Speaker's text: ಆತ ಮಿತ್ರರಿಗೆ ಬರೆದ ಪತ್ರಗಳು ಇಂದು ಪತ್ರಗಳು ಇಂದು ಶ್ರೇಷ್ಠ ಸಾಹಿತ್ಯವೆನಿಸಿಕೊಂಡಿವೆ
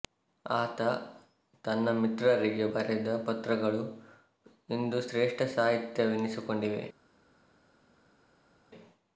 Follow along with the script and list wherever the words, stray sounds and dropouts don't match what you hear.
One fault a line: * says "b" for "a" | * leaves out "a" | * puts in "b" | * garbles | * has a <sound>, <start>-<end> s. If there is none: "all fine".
* puts in "ತನ್ನ"
* leaves out "ಪತ್ರಗಳು ಇಂದು"